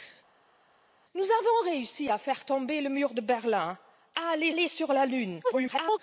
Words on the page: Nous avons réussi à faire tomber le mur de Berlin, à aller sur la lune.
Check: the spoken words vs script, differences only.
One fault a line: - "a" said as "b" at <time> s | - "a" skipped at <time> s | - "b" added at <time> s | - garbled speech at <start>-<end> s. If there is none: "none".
- "aller" added at 4.5 s
- garbled speech at 5.4-6.0 s